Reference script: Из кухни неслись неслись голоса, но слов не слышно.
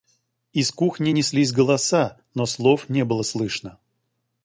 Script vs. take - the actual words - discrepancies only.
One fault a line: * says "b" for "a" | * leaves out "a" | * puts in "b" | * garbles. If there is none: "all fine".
* leaves out "неслись"
* puts in "было"